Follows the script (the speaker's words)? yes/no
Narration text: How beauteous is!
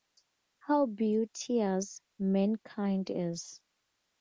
no